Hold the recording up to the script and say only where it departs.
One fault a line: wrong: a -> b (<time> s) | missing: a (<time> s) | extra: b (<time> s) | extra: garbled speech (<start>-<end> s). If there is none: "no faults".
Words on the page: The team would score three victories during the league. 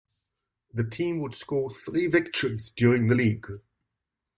no faults